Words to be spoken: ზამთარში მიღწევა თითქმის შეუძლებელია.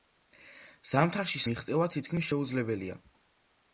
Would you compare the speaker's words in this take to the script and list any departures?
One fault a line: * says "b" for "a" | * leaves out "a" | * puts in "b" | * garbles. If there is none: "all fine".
all fine